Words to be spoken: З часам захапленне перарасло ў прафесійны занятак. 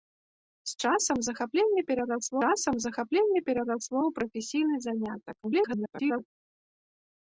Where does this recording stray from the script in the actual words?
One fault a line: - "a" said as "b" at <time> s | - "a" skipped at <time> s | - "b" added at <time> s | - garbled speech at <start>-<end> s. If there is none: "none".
- "часам захапленне перарасло" added at 2.4 s
- garbled speech at 5.4-6.3 s